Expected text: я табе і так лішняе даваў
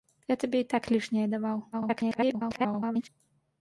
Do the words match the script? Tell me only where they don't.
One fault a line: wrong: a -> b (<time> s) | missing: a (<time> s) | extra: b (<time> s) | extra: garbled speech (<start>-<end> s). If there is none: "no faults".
extra: garbled speech (1.7-3.1 s)